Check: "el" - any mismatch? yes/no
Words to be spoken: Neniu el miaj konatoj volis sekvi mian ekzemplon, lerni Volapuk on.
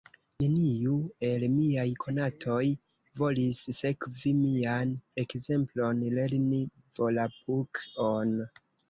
no